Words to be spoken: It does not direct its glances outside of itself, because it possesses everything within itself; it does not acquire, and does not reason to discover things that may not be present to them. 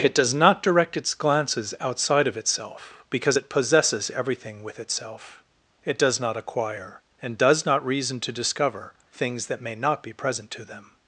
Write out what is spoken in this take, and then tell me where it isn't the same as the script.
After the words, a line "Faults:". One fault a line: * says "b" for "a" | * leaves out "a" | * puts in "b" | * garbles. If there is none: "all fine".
It does not direct its glances outside of itself, because it possesses everything with itself; it does not acquire, and does not reason to discover things that may not be present to them.
Faults:
* says "with" for "within"